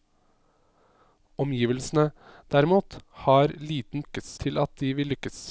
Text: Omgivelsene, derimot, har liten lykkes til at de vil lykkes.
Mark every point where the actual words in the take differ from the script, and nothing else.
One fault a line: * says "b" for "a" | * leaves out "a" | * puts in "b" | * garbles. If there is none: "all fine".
all fine